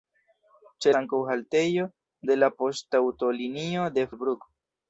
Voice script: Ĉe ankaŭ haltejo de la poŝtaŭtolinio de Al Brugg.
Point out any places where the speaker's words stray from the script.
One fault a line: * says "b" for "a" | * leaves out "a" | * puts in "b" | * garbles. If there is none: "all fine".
all fine